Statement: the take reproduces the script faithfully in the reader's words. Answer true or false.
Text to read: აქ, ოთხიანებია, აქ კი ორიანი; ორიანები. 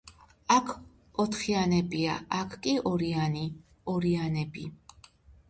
true